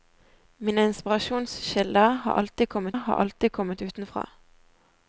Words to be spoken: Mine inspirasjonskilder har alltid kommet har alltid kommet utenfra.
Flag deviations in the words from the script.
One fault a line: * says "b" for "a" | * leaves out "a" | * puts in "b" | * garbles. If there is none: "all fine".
all fine